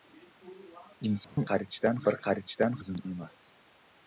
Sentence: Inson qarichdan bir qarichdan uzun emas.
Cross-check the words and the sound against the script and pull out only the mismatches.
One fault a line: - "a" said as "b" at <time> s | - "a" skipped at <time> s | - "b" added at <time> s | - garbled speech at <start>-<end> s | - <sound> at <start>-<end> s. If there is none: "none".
- dropout at 1.2-1.4 s